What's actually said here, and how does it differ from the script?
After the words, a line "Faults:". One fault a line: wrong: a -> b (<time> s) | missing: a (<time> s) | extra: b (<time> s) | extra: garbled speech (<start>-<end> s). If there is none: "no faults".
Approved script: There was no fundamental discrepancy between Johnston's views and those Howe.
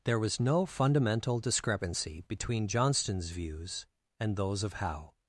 There was no fundamental discrepancy between Johnston's views and those of Howe.
Faults:
extra: of (4.6 s)